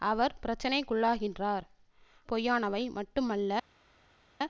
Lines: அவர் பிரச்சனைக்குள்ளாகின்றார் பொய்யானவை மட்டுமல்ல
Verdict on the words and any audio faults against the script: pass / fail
pass